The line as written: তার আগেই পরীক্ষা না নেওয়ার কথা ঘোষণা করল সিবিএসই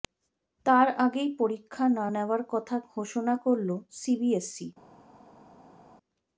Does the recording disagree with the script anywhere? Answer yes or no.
no